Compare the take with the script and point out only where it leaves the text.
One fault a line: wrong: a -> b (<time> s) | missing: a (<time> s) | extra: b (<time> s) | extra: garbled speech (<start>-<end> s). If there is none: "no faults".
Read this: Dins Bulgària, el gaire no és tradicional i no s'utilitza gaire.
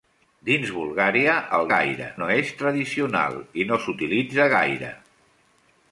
no faults